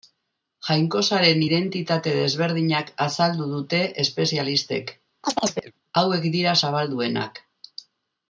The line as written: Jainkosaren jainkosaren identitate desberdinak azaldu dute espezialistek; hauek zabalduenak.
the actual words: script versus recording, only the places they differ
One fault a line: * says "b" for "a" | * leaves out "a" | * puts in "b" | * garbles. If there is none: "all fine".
* leaves out "jainkosaren"
* puts in "dira"